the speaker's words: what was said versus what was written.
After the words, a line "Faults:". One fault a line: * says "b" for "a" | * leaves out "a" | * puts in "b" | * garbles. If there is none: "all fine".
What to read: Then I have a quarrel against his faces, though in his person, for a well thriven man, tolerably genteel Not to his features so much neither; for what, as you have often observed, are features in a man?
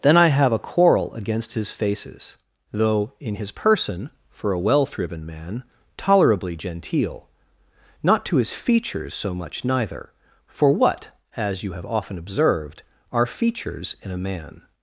Then I have a quarrel against his faces, though in his person, for a well thriven man, tolerably genteel Not to his features so much neither; for what, as you have often observed, are features in a man?
Faults:
all fine